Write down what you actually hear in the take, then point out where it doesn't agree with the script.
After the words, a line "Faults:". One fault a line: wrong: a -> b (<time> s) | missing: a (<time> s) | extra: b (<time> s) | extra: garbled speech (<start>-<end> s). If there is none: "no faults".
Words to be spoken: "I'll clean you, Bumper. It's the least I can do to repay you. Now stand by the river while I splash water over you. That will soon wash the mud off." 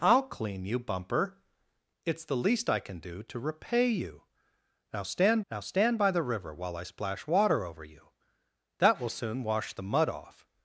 "I'll clean you, Bumper. It's the least I can do to repay you. Now stand now stand by the river while I splash water over you. That will soon wash the mud off."
Faults:
extra: now stand (5.5 s)